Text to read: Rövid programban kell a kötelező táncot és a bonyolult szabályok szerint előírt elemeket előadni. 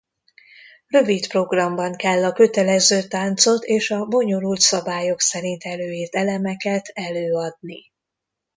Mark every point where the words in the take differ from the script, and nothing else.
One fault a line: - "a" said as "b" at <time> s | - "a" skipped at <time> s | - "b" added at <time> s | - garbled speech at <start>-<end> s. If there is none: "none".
none